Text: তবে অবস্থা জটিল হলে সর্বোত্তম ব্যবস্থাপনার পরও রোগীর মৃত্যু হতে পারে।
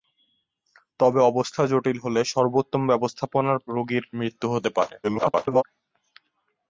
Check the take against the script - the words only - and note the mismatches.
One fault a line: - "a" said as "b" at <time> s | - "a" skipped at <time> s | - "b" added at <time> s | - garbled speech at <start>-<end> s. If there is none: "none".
- "পরও" skipped at 3.6 s
- garbled speech at 5.0-5.6 s